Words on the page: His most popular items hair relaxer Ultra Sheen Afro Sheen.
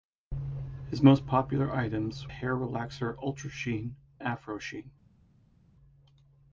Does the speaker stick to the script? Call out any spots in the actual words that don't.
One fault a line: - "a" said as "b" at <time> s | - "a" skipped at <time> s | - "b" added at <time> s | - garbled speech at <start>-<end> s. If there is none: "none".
none